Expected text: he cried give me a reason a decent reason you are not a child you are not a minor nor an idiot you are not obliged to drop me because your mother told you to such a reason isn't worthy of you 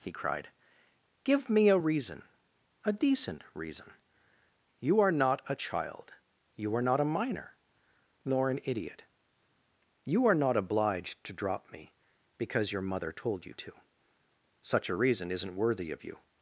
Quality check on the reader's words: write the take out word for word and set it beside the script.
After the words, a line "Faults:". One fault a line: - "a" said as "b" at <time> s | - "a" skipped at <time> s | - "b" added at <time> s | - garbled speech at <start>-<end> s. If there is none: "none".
he cried give me a reason a decent reason you are not a child you are not a minor nor an idiot you are not obliged to drop me because your mother told you to such a reason isn't worthy of you
Faults:
none